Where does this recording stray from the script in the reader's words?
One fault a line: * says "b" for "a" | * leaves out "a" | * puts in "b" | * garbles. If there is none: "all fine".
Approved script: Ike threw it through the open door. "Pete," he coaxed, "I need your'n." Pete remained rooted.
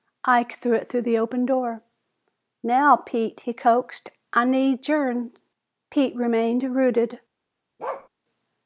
* puts in "Now"